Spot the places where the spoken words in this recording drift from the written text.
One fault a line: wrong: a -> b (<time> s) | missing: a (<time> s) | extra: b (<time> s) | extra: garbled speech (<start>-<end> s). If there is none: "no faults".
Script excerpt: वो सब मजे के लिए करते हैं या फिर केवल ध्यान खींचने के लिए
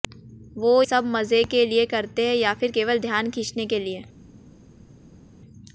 no faults